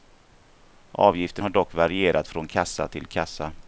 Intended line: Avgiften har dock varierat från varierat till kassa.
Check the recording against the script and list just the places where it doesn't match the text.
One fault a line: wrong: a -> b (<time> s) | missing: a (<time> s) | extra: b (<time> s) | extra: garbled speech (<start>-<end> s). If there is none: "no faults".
wrong: varierat -> kassa (2.5 s)